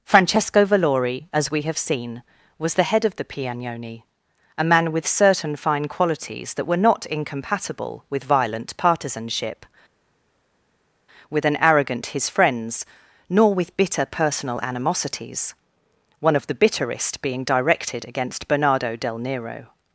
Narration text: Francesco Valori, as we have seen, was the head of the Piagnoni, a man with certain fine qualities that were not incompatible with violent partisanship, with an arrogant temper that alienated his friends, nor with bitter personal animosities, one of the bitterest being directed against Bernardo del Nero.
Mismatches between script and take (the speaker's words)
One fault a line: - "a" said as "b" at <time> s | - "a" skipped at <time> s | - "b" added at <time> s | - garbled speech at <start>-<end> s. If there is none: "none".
- "temper that alienated" skipped at 12.1 s